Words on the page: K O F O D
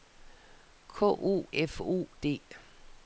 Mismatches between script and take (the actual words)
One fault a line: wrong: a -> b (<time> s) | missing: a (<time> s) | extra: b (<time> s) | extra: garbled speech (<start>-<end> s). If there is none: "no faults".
no faults